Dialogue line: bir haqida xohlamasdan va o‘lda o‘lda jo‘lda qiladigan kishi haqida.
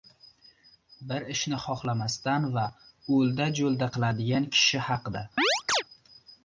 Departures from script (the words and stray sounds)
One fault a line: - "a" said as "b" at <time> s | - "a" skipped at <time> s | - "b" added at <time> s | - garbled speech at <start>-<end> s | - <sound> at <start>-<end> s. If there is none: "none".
- "haqida" said as "ishni" at 1.3 s
- "o‘lda" skipped at 3.5 s
- chirp at 5.4-5.8 s